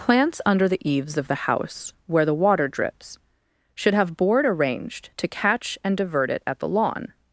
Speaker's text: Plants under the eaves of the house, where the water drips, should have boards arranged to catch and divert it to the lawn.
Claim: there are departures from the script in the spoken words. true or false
true